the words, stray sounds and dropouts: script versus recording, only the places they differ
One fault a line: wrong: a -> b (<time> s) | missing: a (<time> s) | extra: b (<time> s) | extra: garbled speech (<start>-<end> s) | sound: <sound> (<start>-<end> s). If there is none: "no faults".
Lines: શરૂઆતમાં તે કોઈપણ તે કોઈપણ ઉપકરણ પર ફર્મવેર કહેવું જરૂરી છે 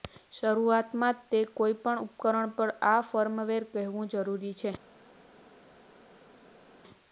missing: તે કોઈપણ (2.0 s)
extra: આ (2.9 s)